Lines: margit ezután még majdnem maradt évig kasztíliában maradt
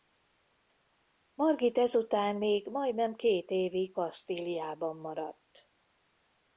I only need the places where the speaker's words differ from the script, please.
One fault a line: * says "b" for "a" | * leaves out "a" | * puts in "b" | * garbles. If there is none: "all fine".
* says "két" for "maradt"